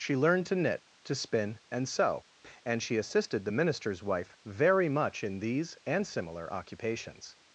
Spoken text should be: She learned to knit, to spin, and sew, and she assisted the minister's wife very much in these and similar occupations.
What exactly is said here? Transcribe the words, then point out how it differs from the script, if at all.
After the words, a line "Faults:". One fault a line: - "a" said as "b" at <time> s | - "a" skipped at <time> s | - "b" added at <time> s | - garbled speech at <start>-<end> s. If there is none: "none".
She learned to knit, to spin, and sew, and she assisted the minister's wife very much in these and similar occupations.
Faults:
none